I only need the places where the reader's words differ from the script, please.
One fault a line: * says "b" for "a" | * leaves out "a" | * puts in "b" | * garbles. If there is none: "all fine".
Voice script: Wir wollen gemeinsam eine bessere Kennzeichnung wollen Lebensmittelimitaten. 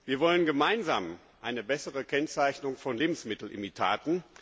* says "von" for "wollen"